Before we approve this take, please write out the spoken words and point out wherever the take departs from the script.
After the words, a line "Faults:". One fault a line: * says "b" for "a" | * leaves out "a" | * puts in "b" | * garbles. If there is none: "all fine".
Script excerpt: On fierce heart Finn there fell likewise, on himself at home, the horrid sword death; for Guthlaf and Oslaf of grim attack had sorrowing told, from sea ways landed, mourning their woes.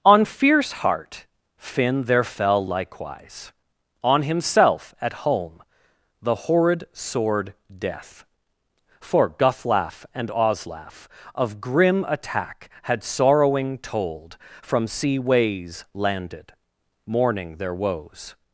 On fierce heart Finn there fell likewise, on himself at home, the horrid sword death; for Guthlaf and Oslaf of grim attack had sorrowing told, from sea ways landed, mourning their woes.
Faults:
all fine